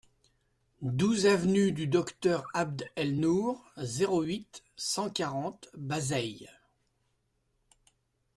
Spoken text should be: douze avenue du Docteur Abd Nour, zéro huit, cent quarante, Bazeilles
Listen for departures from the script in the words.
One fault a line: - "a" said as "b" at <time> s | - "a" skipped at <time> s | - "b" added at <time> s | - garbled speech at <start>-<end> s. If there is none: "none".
- "El" added at 3.0 s